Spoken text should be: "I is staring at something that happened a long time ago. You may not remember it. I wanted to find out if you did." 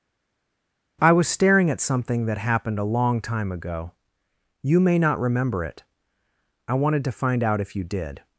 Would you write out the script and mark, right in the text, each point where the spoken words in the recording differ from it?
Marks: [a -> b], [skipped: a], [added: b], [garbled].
"I [is -> was] staring at something that happened a long time ago. You may not remember it. I wanted to find out if you did."